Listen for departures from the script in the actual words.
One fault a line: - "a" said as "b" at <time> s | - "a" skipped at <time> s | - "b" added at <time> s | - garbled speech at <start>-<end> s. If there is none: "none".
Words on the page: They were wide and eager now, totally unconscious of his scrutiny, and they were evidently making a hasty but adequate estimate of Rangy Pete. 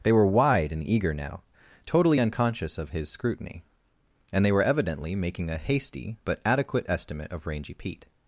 none